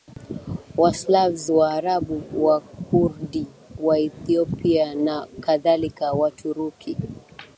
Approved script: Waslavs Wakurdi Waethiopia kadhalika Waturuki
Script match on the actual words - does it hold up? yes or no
no